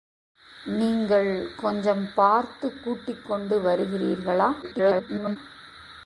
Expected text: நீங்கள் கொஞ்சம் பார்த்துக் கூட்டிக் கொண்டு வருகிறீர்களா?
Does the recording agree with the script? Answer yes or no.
no